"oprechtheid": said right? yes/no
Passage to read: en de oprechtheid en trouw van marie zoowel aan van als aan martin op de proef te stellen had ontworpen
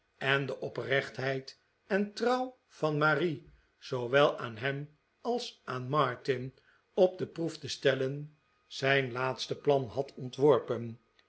yes